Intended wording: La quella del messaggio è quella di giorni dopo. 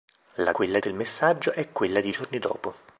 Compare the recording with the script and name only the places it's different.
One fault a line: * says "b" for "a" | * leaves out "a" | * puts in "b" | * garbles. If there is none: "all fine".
all fine